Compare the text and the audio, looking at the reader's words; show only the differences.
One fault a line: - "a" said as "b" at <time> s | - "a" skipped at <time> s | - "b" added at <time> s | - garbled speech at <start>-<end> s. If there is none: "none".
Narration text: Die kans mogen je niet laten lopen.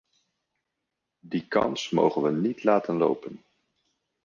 - "je" said as "we" at 2.2 s